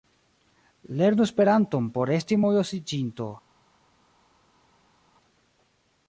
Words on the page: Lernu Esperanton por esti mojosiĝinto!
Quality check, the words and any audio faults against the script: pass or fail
pass